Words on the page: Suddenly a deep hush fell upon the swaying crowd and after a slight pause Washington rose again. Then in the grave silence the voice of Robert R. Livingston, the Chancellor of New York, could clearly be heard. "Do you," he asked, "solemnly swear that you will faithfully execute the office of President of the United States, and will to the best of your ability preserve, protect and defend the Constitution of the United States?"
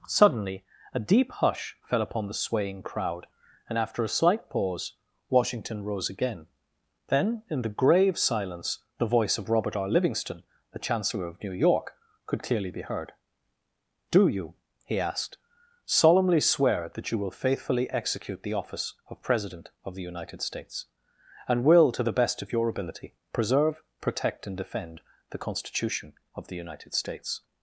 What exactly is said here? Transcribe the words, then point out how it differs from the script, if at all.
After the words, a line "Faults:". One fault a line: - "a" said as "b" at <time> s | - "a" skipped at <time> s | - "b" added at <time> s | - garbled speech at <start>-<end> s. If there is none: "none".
Suddenly a deep hush fell upon the swaying crowd and after a slight pause Washington rose again. Then in the grave silence the voice of Robert R. Livingston, the Chancellor of New York, could clearly be heard. "Do you," he asked, "solemnly swear that you will faithfully execute the office of President of the United States, and will to the best of your ability preserve, protect and defend the Constitution of the United States?"
Faults:
none